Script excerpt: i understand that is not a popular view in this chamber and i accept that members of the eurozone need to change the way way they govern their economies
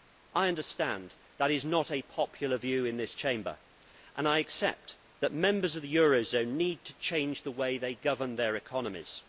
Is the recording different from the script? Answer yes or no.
yes